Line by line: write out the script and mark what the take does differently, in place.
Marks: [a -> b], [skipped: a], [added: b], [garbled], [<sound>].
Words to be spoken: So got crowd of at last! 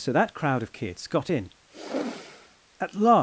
So [got -> that] crowd of [added: kids got in] [sigh] at last!